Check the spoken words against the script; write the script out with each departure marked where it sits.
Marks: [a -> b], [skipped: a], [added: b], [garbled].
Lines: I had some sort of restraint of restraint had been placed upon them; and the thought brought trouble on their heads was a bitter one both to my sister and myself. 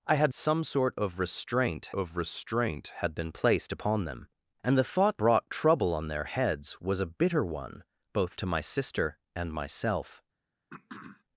I had some sort of restraint of restraint had been placed upon them; and the thought brought trouble on their heads was a bitter one both to my sister and myself.